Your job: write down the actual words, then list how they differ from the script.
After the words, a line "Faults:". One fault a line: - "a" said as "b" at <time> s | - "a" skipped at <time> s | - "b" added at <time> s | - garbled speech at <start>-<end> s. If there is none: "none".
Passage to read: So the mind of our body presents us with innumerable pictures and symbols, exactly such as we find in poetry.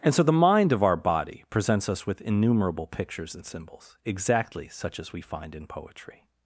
and So the mind of our body presents us with innumerable pictures and symbols, exactly such as we find in poetry.
Faults:
- "and" added at 0.0 s